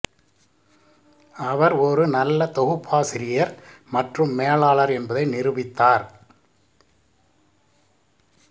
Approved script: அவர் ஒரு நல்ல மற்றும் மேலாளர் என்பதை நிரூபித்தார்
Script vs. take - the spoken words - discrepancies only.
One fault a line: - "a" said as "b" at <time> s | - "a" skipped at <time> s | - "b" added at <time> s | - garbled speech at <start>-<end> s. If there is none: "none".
- "தொகுப்பாசிரியர்" added at 2.5 s